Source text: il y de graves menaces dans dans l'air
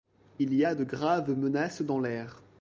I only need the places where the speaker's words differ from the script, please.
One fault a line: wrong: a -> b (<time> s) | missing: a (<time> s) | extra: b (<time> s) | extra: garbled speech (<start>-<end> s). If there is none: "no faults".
extra: a (0.6 s)
missing: dans (2.0 s)